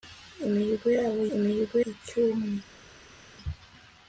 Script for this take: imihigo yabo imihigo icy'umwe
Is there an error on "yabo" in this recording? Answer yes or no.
no